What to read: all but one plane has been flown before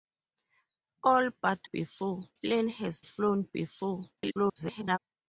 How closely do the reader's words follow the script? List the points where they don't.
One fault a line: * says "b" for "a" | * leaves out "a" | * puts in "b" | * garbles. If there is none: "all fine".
* says "before" for "one"
* leaves out "been"
* garbles